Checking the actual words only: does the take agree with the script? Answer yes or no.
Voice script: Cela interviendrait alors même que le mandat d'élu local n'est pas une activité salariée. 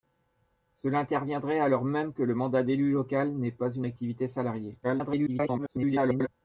no